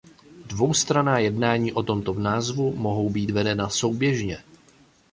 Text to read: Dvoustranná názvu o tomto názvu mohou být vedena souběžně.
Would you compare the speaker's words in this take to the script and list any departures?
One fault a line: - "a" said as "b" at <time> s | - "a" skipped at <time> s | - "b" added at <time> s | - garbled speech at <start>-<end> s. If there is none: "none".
- "názvu" said as "jednání" at 1.2 s